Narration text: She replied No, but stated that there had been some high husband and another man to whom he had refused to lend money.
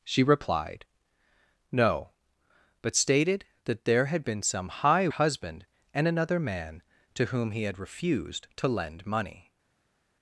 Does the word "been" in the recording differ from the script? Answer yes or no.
no